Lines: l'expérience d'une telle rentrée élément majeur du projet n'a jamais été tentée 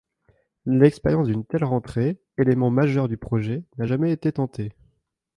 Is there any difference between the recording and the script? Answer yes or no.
no